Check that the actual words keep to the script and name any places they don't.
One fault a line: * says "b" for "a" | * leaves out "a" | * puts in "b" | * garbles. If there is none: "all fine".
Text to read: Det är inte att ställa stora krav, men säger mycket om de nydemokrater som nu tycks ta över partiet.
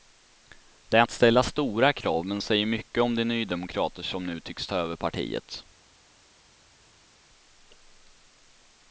* leaves out "inte"